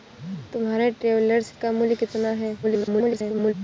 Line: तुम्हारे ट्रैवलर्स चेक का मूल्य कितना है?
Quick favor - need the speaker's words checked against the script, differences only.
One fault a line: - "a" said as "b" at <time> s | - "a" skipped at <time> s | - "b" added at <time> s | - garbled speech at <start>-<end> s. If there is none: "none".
- "चेक" skipped at 1.5 s
- garbled speech at 2.6-3.5 s